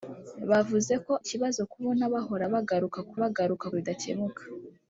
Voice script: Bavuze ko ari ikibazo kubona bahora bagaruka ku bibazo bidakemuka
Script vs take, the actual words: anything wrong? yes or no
yes